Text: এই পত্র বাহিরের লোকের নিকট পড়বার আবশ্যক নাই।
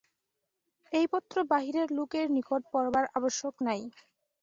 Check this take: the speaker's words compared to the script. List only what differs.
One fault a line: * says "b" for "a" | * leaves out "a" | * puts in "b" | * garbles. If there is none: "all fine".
all fine